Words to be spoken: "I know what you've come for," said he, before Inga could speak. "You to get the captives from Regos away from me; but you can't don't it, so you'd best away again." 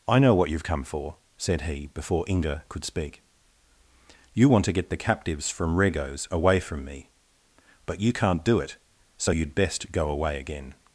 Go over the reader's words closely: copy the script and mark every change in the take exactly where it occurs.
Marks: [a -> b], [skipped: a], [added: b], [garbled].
"I know what you've come for," said he, before Inga could speak. "You [added: want] to get the captives from Regos away from me; but you can't [don't -> do] it, so you'd best [added: go] away again."